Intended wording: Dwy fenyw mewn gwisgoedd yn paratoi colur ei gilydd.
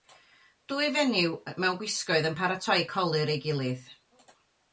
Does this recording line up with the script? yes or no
yes